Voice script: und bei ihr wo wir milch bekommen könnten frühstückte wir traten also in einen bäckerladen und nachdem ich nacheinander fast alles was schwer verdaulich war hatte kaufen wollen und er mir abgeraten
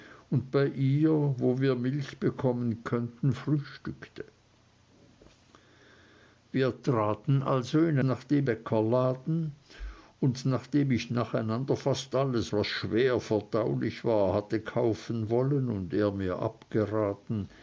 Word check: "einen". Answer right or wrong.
wrong